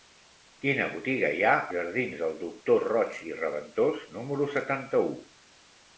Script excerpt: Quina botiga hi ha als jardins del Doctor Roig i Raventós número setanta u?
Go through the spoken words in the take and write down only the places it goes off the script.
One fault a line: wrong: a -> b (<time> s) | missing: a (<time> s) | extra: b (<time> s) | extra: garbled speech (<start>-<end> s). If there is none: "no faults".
missing: als (1.5 s)